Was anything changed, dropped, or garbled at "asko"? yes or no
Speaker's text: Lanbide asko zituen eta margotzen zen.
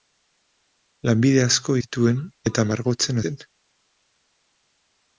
no